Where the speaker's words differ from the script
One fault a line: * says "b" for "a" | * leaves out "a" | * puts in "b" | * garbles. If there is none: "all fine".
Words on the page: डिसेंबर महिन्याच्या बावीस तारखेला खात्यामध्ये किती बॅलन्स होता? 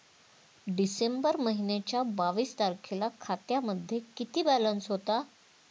all fine